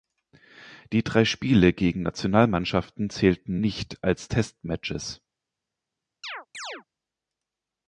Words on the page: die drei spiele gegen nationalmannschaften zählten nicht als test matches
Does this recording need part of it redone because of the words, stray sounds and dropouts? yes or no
yes